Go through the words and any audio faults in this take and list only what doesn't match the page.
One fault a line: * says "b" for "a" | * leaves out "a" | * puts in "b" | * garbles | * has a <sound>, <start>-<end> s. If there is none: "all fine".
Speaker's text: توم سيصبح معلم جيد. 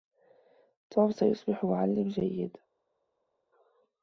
all fine